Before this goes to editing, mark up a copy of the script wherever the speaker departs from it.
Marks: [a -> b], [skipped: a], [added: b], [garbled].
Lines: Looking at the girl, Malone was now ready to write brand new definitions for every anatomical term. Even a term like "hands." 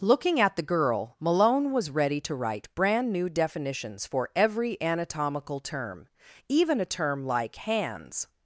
Looking at the girl, Malone was [skipped: now] ready to write brand new definitions for every anatomical term. Even a term like "hands."